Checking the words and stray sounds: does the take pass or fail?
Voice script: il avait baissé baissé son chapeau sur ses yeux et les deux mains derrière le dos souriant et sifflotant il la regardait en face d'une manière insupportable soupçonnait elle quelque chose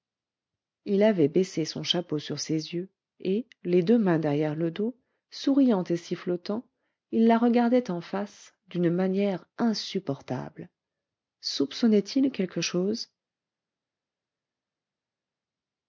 fail